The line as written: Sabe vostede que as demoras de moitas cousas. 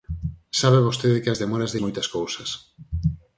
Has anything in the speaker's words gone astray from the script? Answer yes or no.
no